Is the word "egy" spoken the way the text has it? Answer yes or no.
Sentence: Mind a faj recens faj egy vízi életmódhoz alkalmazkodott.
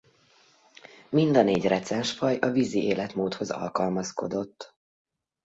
no